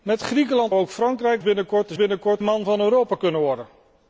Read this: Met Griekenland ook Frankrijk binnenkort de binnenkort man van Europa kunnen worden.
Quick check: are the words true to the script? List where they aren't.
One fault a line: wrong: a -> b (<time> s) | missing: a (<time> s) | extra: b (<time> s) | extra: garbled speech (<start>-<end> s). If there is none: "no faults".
no faults